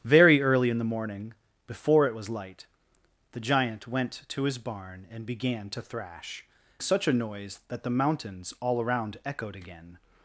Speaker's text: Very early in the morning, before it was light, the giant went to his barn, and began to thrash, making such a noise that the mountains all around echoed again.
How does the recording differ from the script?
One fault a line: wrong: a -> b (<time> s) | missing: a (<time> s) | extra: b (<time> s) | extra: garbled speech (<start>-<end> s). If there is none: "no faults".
missing: making (6.4 s)